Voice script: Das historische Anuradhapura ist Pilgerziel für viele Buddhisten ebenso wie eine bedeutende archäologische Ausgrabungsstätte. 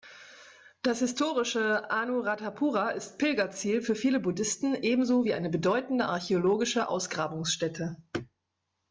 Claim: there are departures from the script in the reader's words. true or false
false